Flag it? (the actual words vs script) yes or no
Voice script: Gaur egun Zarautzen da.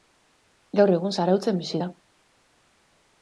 yes